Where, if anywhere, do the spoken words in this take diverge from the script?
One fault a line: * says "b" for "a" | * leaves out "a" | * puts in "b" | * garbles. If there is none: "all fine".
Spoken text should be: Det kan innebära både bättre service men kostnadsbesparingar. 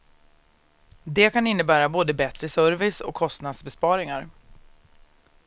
* says "och" for "men"